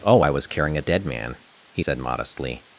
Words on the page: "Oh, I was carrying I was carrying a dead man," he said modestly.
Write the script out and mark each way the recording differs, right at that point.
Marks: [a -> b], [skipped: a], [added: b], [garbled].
"Oh, I was carrying [skipped: I was carrying] a dead man," he said modestly.